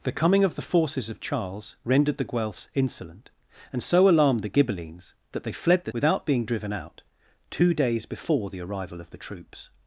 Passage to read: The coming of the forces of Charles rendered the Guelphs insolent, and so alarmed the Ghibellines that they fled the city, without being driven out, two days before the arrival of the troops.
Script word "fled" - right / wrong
right